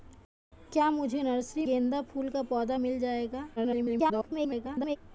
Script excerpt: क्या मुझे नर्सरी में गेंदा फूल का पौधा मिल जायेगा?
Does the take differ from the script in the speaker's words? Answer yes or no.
yes